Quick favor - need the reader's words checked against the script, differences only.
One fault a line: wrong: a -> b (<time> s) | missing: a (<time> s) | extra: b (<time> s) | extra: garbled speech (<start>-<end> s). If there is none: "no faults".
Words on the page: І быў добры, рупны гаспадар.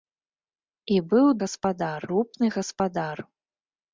wrong: добры -> гаспадар (1.4 s)